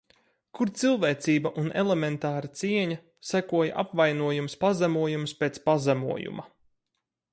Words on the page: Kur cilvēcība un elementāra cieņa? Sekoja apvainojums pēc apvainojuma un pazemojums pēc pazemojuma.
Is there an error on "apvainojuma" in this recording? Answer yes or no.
yes